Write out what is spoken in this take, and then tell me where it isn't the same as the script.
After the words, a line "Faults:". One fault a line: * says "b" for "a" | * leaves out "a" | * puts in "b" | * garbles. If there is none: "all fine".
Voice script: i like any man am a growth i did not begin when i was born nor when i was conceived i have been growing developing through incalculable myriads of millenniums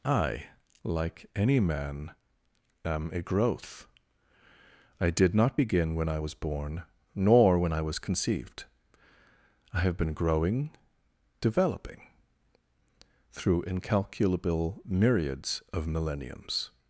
i like any man am a growth i did not begin when i was born nor when i was conceived i have been growing developing through incalculable myriads of millenniums
Faults:
all fine